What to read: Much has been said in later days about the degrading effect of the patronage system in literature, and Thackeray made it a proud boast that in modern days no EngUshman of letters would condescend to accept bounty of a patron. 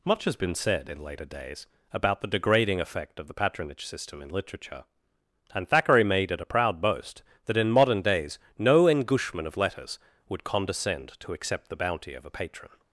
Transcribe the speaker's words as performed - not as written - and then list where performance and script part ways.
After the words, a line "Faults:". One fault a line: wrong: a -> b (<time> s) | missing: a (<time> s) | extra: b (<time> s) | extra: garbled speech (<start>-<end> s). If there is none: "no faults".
Much has been said in later days about the degrading effect of the patronage system in literature, and Thackeray made it a proud boast that in modern days no EngUshman of letters would condescend to accept the bounty of a patron.
Faults:
extra: the (11.7 s)